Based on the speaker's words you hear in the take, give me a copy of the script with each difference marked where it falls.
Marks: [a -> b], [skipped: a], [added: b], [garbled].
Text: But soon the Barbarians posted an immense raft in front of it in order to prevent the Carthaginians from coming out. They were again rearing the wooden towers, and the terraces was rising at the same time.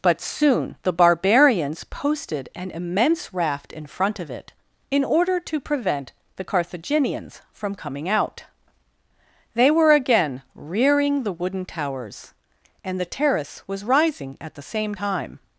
But soon the Barbarians posted an immense raft in front of it in order to prevent the Carthaginians from coming out. They were again rearing the wooden towers, and the [terraces -> terrace] was rising at the same time.